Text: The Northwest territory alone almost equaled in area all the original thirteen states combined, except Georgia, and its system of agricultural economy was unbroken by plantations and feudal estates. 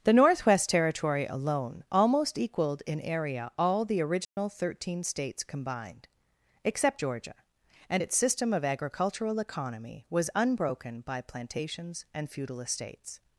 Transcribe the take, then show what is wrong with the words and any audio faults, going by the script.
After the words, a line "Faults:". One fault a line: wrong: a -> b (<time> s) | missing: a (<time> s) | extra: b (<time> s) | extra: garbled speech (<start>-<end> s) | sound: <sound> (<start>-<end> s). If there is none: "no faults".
The Northwest territory alone almost equaled in area all the original thirteen states combined, except Georgia, and its system of agricultural economy was unbroken by plantations and feudal estates.
Faults:
sound: dropout (4.2-4.4 s)